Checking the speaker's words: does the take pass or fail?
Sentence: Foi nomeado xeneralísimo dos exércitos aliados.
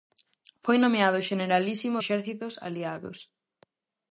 fail